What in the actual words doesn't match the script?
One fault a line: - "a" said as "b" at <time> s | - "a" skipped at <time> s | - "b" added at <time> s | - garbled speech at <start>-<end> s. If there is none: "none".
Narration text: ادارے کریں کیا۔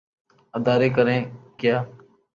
none